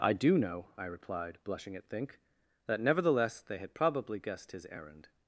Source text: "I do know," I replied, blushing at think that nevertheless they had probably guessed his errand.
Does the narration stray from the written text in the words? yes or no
no